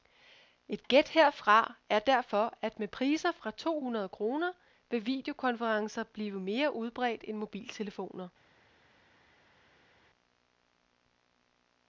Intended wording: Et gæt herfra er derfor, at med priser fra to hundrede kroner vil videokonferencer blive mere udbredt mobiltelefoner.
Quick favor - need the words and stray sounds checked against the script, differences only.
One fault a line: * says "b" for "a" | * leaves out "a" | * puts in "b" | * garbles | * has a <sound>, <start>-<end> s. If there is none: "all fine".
* puts in "end"